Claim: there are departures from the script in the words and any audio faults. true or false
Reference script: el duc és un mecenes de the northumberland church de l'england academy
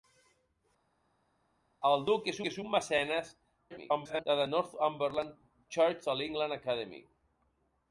true